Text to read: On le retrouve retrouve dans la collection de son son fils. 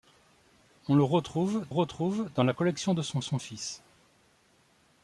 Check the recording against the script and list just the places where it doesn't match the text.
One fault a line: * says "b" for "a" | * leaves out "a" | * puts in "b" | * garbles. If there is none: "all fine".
all fine